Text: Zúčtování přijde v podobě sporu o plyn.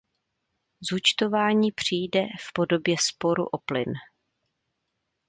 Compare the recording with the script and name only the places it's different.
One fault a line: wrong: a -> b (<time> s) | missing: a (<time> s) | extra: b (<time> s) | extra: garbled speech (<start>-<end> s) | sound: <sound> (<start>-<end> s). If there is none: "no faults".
no faults